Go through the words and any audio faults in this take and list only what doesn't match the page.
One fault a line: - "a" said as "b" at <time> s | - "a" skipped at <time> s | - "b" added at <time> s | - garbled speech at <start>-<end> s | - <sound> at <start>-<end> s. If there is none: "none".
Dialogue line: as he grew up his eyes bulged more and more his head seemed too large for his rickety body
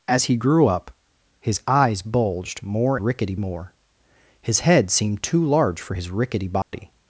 - "and" said as "rickety" at 3.0 s
- dropout at 6.6-6.7 s